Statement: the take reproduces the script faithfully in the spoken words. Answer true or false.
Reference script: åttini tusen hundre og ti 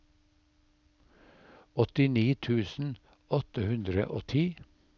false